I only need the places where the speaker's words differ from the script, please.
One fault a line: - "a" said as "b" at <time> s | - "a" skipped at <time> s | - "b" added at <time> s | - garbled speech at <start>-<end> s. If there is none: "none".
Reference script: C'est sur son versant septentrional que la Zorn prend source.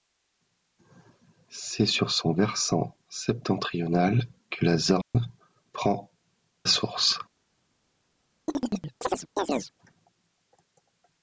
none